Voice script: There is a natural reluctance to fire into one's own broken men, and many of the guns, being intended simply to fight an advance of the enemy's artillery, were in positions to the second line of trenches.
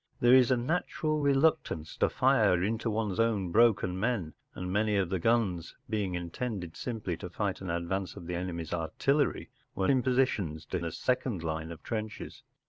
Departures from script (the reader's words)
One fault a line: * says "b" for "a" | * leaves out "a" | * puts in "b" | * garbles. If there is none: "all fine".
all fine